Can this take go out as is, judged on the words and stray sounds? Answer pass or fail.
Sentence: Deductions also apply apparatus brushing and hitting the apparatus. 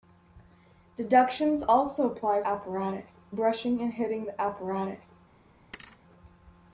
fail